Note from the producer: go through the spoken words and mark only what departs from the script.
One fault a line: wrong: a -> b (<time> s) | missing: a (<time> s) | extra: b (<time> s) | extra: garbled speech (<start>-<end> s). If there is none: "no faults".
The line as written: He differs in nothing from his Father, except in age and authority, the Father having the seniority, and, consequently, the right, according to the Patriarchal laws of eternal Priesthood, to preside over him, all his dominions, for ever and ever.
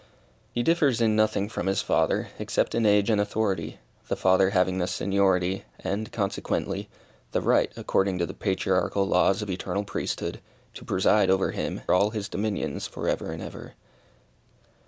no faults